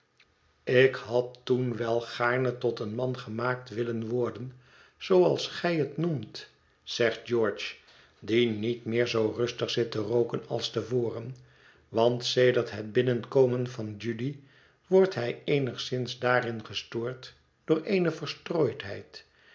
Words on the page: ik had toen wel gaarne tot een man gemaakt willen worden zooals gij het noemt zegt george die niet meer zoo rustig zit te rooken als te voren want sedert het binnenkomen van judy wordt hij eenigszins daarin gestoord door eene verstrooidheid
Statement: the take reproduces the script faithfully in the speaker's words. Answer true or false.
true